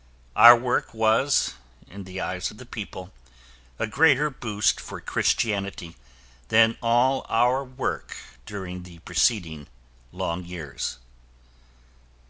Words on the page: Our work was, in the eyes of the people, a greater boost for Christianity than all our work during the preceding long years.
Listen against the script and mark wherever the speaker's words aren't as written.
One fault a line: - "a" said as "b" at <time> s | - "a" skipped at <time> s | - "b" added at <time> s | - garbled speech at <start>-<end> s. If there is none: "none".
none